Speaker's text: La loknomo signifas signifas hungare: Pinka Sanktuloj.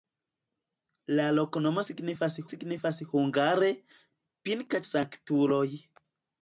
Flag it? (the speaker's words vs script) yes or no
no